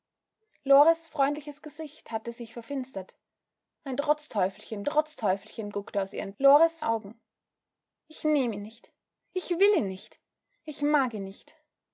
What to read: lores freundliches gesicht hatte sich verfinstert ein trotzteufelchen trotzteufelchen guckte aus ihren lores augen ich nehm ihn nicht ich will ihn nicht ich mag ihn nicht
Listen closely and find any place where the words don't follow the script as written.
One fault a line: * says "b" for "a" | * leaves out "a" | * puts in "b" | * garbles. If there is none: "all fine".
all fine